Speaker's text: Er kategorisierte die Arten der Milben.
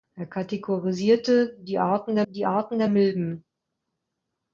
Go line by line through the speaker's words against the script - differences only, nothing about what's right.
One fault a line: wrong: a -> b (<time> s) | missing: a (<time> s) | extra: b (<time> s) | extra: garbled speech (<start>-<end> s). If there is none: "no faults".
extra: die Arten der (2.3 s)